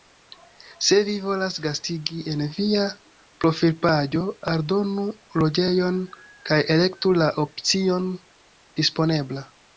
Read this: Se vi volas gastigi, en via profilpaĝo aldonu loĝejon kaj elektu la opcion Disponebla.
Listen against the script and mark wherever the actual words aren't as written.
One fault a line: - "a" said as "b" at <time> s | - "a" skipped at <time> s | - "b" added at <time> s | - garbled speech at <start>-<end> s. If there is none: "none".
none